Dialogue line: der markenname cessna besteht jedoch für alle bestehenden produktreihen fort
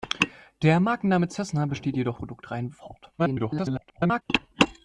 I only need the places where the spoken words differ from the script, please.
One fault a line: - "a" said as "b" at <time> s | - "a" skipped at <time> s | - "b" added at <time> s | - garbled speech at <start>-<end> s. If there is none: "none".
- "für alle bestehenden" skipped at 2.2 s
- garbled speech at 3.2-4.2 s